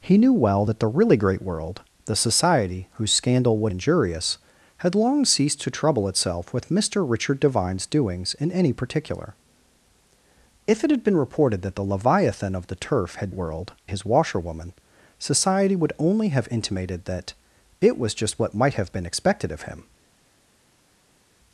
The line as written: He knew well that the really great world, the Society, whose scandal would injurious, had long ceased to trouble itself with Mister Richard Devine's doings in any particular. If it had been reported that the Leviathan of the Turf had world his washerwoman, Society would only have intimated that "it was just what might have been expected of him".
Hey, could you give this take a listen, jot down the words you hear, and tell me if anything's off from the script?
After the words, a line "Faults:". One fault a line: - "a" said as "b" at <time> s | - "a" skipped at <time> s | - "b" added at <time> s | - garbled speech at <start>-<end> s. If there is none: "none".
He knew well that the really great world, the Society, whose scandal would injurious, had long ceased to trouble itself with Mister Richard Devine's doings in any particular. If it had been reported that the Leviathan of the Turf had world his washerwoman, Society would only have intimated that "it was just what might have been expected of him".
Faults:
none